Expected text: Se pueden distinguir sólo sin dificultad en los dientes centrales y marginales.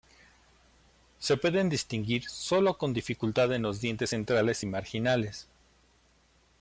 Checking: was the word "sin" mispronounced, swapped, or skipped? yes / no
yes